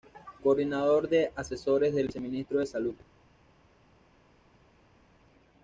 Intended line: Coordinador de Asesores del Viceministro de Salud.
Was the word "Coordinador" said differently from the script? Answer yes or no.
no